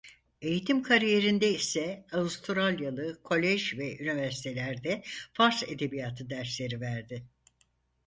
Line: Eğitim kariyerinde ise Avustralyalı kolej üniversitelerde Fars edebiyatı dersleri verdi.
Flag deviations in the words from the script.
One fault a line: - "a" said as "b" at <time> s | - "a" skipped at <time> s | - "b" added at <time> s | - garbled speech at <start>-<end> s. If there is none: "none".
- "ve" added at 3.8 s